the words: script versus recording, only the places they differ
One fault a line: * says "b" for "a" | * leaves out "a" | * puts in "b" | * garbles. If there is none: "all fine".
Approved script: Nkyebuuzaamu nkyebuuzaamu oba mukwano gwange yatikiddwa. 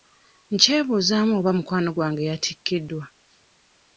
* leaves out "nkyebuuzaamu"